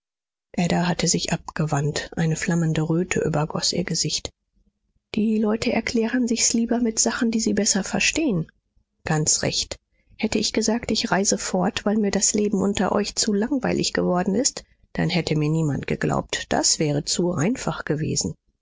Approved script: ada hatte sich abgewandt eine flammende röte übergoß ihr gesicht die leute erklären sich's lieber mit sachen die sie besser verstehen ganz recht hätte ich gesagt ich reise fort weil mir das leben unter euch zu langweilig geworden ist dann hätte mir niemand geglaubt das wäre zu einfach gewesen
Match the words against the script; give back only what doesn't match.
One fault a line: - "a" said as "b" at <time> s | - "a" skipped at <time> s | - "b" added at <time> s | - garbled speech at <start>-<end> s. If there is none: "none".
none